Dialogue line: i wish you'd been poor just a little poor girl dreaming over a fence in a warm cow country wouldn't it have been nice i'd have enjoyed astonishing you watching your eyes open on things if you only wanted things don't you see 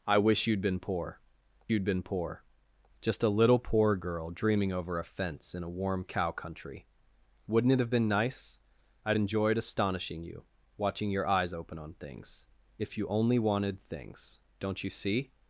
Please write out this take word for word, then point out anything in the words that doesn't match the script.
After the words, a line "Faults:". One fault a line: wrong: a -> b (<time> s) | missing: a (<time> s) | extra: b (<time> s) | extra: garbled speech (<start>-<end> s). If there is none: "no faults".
i wish you'd been poor you'd been poor just a little poor girl dreaming over a fence in a warm cow country wouldn't it have been nice i'd enjoyed astonishing you watching your eyes open on things if you only wanted things don't you see
Faults:
extra: you'd been poor (1.7 s)
missing: have (9.2 s)